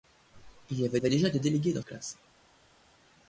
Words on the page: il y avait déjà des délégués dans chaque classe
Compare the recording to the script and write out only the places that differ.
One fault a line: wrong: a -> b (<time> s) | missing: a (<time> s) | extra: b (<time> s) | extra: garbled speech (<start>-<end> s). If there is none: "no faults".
extra: avait (1.0 s)
missing: chaque (1.8 s)